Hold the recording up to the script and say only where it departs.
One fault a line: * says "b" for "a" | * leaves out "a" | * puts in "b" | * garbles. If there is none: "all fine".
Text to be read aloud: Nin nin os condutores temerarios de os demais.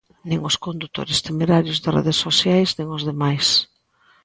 * leaves out "nin"
* puts in "redes sociais nin"